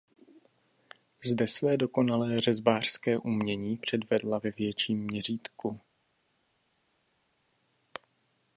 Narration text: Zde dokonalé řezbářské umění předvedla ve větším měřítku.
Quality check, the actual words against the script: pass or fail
fail